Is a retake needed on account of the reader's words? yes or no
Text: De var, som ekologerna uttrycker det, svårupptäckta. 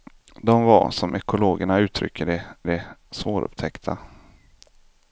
yes